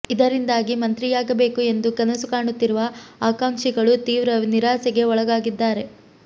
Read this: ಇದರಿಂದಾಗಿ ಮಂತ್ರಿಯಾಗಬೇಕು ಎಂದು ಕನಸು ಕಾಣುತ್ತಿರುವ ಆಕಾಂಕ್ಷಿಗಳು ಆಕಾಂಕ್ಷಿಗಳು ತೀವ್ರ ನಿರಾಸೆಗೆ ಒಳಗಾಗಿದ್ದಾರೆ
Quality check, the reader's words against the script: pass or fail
fail